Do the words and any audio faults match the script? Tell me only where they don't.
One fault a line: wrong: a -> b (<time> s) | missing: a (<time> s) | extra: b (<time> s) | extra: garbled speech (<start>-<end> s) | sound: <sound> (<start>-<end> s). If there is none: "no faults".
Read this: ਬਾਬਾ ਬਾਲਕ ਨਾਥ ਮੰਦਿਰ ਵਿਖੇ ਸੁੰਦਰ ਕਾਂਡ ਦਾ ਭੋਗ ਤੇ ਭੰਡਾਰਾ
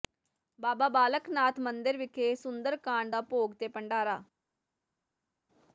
no faults